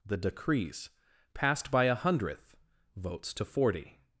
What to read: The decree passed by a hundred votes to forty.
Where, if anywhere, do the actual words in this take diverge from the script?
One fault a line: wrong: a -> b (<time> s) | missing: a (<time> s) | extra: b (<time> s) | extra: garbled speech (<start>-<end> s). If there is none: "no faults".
wrong: decree -> decrees (0.2 s)
wrong: hundred -> hundredth (1.9 s)